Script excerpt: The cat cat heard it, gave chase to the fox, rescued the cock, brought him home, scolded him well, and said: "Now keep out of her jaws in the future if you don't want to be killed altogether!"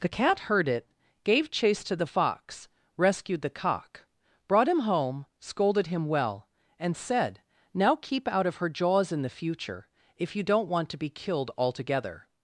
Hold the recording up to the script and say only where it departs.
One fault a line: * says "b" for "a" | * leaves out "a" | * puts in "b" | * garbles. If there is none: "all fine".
* leaves out "cat"